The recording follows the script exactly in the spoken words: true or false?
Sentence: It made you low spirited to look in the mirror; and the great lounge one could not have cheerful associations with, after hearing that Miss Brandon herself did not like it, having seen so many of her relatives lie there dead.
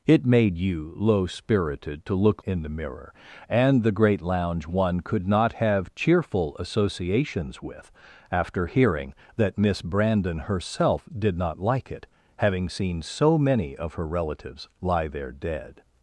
true